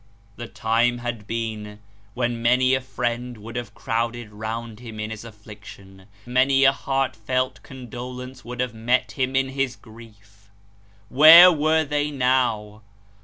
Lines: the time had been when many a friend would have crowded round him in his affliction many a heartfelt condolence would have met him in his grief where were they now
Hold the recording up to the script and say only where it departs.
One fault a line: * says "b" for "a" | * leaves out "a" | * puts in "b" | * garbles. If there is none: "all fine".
all fine